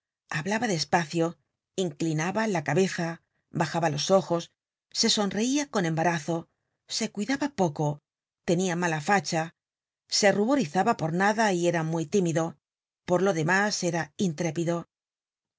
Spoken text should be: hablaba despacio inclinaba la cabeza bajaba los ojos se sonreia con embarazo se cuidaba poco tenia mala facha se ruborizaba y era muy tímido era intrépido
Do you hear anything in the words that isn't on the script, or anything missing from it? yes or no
yes